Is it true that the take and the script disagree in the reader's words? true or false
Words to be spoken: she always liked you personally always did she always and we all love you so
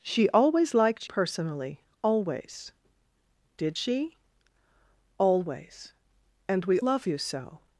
true